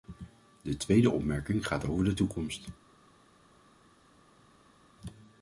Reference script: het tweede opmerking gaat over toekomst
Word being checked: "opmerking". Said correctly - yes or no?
yes